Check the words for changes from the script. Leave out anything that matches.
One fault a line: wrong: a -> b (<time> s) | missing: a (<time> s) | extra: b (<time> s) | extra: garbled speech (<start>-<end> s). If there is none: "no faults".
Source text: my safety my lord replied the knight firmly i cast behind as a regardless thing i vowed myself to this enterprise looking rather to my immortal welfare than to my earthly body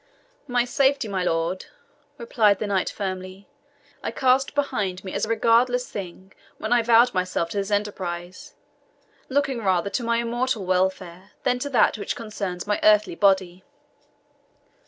extra: me (5.0 s)
extra: when (6.6 s)
extra: that which concerns (11.7 s)